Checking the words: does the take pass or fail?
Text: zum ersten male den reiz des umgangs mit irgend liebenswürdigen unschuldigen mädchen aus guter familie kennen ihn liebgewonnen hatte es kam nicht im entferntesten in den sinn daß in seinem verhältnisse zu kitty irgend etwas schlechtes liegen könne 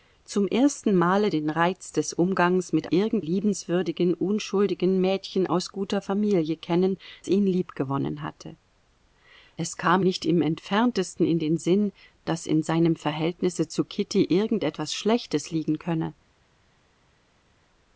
pass